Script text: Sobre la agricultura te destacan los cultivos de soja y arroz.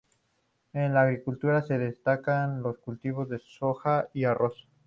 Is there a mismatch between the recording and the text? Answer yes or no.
yes